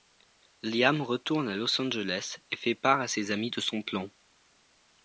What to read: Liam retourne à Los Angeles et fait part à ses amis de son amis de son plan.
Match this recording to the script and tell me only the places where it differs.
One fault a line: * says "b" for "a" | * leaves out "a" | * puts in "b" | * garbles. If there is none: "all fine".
* leaves out "amis de son"